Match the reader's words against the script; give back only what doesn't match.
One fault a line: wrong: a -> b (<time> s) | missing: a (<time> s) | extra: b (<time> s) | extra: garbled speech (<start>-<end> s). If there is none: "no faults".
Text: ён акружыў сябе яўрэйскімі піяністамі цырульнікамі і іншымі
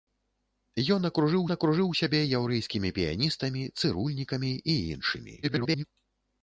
extra: акружыў (1.5 s)
extra: garbled speech (5.4-5.8 s)